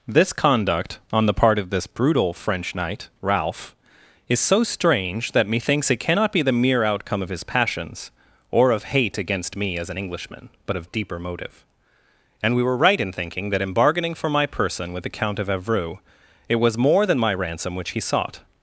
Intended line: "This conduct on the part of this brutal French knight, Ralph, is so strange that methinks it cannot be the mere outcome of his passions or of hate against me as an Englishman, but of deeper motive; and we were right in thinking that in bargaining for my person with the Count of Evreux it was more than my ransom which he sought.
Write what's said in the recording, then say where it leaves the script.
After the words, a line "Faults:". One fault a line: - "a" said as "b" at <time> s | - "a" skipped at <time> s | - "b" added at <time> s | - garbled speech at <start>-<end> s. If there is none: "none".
"This conduct on the part of this brutal French knight, Ralph, is so strange that methinks it cannot be the mere outcome of his passions or of hate against me as an Englishman, but of deeper motive; and we were right in thinking that in bargaining for my person with the Count of Evreux it was more than my ransom which he sought.
Faults:
none